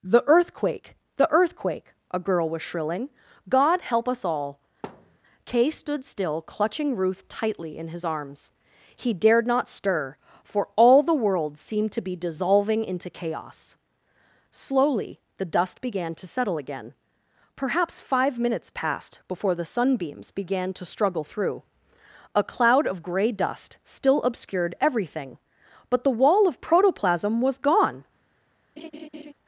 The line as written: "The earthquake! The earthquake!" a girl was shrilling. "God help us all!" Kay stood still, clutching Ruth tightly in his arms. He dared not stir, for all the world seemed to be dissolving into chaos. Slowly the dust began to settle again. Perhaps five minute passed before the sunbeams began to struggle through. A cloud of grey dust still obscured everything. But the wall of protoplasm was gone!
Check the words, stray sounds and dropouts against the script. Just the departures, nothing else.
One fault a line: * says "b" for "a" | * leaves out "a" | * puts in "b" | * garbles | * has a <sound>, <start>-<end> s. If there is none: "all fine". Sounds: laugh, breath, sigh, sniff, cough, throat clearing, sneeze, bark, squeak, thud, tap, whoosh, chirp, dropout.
* has a thud, 4.8-5.2 s
* says "minutes" for "minute"
* has a laugh, 28.8-29.3 s